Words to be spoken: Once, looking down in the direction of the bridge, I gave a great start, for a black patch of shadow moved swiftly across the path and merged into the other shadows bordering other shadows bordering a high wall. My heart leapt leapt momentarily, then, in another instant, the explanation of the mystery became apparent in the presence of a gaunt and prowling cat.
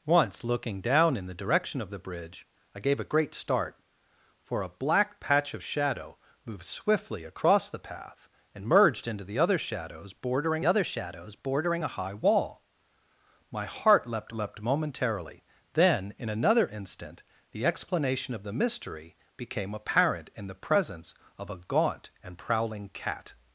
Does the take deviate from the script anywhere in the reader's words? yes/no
no